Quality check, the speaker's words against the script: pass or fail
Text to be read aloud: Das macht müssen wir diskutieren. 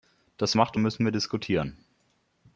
pass